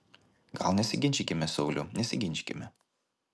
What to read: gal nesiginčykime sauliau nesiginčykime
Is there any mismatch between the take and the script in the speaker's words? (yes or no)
no